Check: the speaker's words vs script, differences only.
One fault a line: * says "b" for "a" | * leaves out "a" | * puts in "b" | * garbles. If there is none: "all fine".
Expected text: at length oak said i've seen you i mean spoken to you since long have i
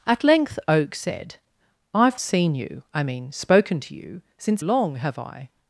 all fine